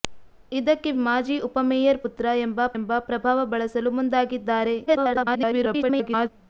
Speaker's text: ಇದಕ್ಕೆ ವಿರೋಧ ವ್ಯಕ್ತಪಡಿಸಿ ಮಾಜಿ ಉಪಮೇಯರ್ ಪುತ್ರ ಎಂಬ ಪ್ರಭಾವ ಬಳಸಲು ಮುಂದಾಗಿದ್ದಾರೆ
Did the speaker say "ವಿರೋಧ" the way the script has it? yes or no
no